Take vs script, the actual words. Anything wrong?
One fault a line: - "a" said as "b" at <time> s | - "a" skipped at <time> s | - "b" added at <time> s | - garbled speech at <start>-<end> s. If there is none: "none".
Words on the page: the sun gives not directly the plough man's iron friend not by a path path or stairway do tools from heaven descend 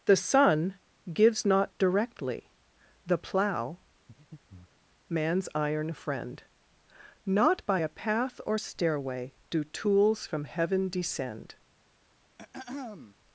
- "path" skipped at 8.4 s